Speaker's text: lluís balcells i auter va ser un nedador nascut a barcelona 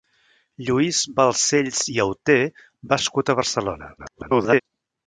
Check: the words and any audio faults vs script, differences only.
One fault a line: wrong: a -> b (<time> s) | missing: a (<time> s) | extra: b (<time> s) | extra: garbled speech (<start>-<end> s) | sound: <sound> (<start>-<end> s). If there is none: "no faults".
missing: ser un nedador (3.0 s)
extra: garbled speech (4.0-4.6 s)